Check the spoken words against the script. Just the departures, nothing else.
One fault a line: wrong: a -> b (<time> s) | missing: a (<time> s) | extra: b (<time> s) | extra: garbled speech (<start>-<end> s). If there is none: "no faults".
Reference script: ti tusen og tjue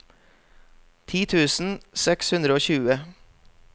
extra: seks hundre (2.0 s)